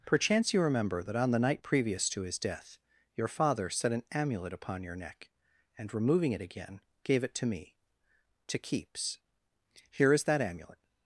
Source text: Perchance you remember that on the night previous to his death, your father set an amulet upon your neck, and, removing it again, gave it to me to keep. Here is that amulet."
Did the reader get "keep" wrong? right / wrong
wrong